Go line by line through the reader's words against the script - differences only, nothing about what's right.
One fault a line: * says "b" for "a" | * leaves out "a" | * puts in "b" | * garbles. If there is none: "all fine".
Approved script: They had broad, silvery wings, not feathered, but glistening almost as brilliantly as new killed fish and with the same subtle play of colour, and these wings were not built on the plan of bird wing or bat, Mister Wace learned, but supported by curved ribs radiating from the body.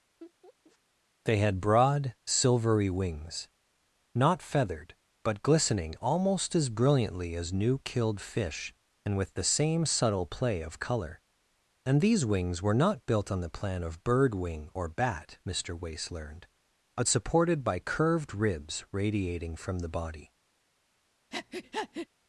all fine